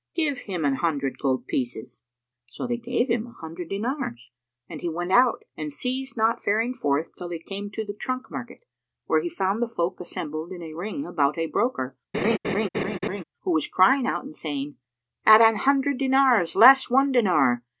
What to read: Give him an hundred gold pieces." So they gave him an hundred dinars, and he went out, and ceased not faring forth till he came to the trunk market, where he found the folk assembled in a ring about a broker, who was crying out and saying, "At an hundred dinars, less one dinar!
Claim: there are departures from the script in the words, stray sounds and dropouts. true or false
true